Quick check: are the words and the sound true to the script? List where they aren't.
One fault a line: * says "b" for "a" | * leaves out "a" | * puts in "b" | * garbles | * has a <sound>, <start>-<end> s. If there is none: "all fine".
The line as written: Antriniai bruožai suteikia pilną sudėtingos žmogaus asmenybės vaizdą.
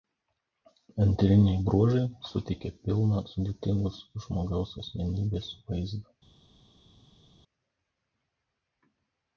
all fine